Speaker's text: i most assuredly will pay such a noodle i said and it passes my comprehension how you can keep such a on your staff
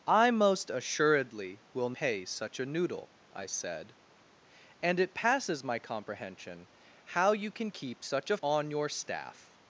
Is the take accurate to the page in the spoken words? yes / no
yes